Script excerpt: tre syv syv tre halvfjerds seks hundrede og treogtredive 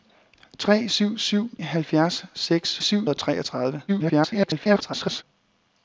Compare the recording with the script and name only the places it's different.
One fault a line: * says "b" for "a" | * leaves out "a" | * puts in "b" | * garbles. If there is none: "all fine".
* leaves out "tre"
* says "syv" for "hundrede"
* garbles